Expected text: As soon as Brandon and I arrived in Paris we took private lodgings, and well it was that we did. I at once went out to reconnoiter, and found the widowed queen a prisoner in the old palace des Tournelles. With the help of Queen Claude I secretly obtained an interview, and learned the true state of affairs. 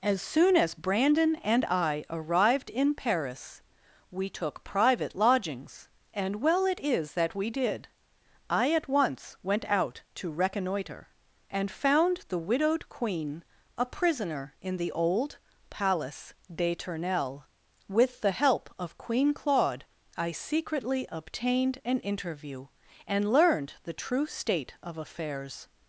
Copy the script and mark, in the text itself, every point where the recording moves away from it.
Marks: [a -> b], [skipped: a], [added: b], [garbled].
As soon as Brandon and I arrived in Paris we took private lodgings, and well it [was -> is] that we did. I at once went out to reconnoiter, and found the widowed queen a prisoner in the old palace des Tournelles. With the help of Queen Claude I secretly obtained an interview, and learned the true state of affairs.